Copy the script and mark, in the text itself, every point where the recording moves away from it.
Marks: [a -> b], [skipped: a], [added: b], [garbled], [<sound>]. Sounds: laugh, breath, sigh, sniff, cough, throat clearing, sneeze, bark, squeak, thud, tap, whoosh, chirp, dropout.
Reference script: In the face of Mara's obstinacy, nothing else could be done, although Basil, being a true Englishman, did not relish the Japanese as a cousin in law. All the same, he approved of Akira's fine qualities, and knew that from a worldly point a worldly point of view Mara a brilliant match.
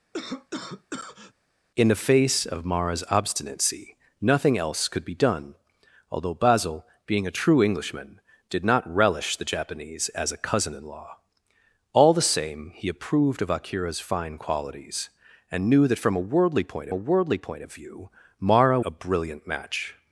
[cough] In the face of Mara's obstinacy, nothing else could be done, although Basil, being a true Englishman, did not relish the Japanese as a cousin in law. All the same, he approved of Akira's fine qualities, and knew that from a worldly point a worldly point of view Mara a brilliant match.